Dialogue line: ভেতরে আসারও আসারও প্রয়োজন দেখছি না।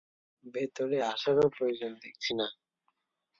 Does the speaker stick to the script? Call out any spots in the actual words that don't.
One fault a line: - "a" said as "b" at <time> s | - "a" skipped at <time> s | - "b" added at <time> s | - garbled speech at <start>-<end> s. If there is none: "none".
- "আসারও" skipped at 1.5 s